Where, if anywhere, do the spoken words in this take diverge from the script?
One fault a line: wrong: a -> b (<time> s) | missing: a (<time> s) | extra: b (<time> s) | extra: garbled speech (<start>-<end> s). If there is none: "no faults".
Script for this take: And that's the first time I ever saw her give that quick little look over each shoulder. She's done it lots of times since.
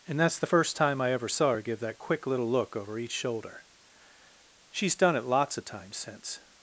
no faults